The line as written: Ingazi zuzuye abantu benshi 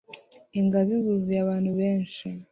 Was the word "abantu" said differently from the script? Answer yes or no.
no